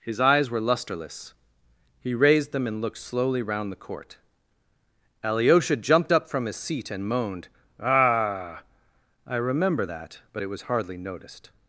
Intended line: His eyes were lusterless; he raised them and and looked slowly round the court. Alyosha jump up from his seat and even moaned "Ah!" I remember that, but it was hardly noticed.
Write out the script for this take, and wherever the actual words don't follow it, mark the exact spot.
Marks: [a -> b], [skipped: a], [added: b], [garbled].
His eyes were lusterless; he raised them and [skipped: and] looked slowly round the court. Alyosha [jump -> jumped] up from his seat and [skipped: even] moaned "Ah!" I remember that, but it was hardly noticed.